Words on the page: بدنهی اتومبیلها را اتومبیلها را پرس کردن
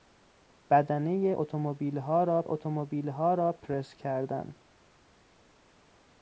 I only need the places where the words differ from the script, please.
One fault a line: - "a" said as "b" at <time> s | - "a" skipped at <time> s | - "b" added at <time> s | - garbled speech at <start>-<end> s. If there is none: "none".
none